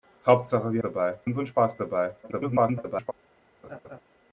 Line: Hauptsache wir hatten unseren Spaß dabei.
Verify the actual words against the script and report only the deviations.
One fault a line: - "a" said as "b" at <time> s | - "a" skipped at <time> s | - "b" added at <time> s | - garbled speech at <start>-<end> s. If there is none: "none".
- "hatten" said as "dabei" at 0.8 s
- garbled speech at 2.2-3.1 s